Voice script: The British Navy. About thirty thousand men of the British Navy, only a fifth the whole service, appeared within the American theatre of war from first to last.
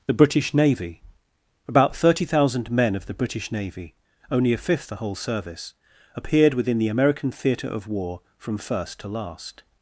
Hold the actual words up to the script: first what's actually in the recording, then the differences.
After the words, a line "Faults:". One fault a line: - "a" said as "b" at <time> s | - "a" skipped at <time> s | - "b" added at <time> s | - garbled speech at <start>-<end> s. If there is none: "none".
The British Navy. About thirty thousand men of the British Navy, only a fifth the whole service, appeared within the American theatre of war from first to last.
Faults:
none